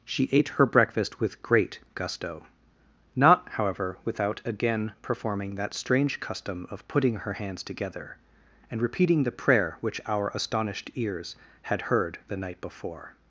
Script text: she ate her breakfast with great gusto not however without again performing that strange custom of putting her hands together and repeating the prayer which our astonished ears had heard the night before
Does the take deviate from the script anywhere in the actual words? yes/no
no